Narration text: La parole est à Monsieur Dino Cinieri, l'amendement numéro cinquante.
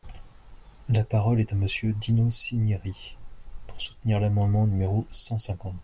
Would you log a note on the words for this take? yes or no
yes